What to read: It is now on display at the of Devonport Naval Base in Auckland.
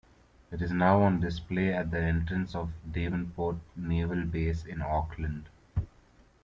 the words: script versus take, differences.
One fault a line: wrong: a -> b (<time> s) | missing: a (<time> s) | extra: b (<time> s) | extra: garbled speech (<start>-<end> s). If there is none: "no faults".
extra: entrance (2.0 s)